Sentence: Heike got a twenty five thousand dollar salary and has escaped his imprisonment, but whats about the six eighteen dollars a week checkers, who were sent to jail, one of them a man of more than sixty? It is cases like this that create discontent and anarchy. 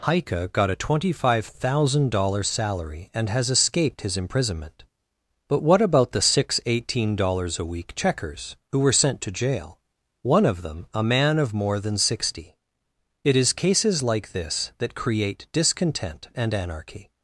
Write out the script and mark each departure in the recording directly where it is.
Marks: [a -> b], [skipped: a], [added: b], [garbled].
Heike got a twenty five thousand dollar salary and has escaped his imprisonment, but [whats -> what] about the six eighteen dollars a week checkers, who were sent to jail, one of them a man of more than sixty? It is cases like this that create discontent and anarchy.